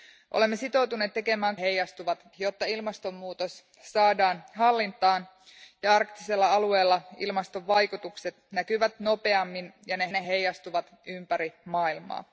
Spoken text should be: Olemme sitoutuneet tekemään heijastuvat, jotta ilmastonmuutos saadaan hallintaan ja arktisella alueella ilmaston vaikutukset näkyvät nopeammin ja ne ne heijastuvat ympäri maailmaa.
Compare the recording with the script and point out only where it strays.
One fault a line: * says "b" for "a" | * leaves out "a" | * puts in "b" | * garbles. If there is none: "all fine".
all fine